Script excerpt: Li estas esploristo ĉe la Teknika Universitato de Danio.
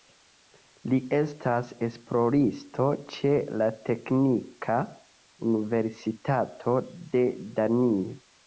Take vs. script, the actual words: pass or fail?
pass